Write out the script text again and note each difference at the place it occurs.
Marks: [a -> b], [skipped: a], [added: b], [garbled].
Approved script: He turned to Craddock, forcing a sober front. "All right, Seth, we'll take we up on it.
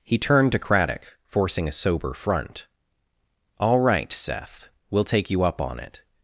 He turned to Craddock, forcing a sober front. "All right, Seth, we'll take [we -> you] up on it.